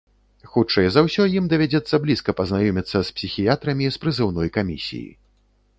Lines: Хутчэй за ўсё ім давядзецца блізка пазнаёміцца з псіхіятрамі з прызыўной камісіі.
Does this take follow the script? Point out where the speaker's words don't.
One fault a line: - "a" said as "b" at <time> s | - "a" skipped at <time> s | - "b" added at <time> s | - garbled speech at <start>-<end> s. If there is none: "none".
none